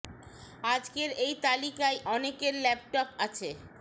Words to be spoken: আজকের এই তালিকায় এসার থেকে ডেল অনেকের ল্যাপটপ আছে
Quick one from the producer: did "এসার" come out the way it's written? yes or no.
no